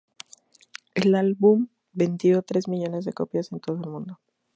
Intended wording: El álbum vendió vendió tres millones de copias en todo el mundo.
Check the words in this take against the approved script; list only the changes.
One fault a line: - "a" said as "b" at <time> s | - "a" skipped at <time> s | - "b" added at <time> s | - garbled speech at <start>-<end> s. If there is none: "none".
- "vendió" skipped at 2.4 s